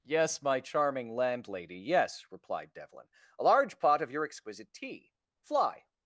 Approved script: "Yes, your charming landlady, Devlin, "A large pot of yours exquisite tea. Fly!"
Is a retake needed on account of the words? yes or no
yes